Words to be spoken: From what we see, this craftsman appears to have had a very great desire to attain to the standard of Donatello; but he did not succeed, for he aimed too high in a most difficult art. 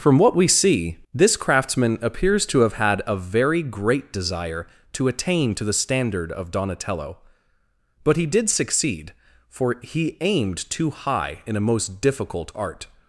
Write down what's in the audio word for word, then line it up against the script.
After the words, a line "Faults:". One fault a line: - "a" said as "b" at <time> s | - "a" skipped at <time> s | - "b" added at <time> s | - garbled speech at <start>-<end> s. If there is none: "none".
From what we see, this craftsman appears to have had a very great desire to attain to the standard of Donatello; but he did succeed, for he aimed too high in a most difficult art.
Faults:
- "not" skipped at 8.5 s